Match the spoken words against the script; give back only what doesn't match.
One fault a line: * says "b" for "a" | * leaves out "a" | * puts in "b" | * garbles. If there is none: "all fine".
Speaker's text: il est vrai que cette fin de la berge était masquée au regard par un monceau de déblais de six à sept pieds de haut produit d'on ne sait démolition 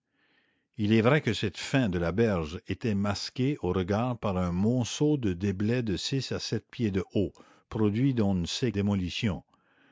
all fine